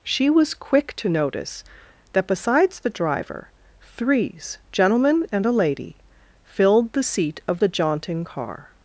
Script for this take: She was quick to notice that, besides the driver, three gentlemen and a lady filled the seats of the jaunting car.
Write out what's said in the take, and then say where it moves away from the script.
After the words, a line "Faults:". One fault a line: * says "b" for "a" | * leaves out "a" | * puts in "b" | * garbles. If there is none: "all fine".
She was quick to notice that, besides the driver, threes gentlemen and a lady filled the seat of the jaunting car.
Faults:
* says "threes" for "three"
* says "seat" for "seats"